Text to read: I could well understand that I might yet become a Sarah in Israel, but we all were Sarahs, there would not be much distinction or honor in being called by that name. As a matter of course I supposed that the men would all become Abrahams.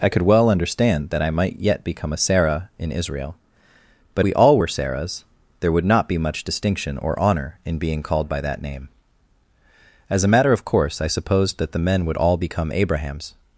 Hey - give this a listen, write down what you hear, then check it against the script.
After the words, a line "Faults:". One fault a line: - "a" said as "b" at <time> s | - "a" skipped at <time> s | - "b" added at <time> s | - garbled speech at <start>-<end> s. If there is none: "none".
I could well understand that I might yet become a Sarah in Israel, but we all were Sarahs, there would not be much distinction or honor in being called by that name. As a matter of course I supposed that the men would all become Abrahams.
Faults:
none